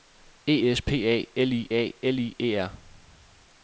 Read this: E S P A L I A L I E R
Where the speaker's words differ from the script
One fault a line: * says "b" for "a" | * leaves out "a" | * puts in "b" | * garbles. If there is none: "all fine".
all fine